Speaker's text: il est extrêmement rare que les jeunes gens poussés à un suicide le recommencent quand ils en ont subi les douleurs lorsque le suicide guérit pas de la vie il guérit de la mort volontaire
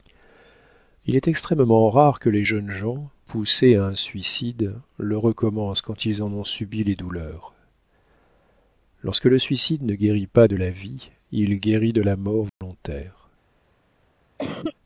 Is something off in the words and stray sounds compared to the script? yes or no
yes